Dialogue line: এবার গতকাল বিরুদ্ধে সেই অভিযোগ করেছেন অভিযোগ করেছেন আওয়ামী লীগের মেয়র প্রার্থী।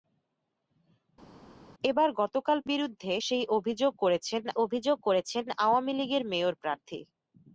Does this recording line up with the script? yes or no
yes